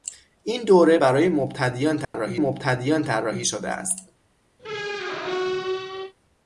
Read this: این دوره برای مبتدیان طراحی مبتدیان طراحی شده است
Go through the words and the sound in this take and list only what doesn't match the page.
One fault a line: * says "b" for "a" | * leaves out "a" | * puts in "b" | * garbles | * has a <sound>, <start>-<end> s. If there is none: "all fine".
* has a dropout, 2.0-2.1 s
* has a squeak, 4.6-6.1 s